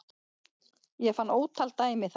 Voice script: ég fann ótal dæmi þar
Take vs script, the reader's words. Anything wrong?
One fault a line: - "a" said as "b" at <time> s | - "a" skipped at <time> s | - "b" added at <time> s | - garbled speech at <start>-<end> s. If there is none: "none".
none